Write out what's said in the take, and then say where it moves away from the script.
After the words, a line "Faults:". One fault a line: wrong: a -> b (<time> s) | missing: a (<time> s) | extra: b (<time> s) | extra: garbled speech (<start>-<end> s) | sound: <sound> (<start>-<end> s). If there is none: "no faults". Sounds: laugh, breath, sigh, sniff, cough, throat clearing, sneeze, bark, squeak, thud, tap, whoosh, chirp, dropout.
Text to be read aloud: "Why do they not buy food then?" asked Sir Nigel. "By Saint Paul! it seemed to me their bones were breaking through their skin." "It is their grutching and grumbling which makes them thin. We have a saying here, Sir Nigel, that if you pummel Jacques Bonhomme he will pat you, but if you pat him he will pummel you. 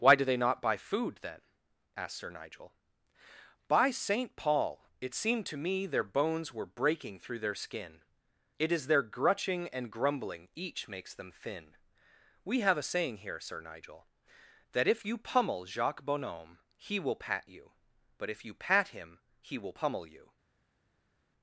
"Why do they not buy food then?" asked Sir Nigel. "By Saint Paul! it seemed to me their bones were breaking through their skin." "It is their grutching and grumbling each makes them thin. We have a saying here, Sir Nigel, that if you pummel Jacques Bonhomme he will pat you, but if you pat him he will pummel you.
Faults:
wrong: which -> each (10.6 s)